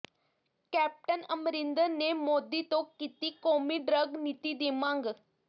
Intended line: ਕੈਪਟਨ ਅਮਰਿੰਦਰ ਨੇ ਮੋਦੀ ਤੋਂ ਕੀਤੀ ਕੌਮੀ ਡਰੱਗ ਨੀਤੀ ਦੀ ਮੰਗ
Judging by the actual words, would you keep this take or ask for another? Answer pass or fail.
pass